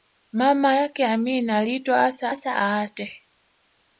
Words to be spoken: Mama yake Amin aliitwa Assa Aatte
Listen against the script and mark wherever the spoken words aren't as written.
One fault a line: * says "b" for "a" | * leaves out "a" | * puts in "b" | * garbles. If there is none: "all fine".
* puts in "Assa"